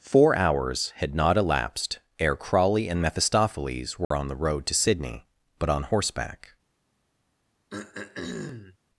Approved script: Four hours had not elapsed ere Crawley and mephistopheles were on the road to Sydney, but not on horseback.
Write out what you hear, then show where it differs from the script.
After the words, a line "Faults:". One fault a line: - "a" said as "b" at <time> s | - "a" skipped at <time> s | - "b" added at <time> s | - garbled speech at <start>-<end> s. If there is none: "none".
Four hours had not elapsed ere Crawley and mephistopheles were on the road to Sydney, but on horseback.
Faults:
- "not" skipped at 5.7 s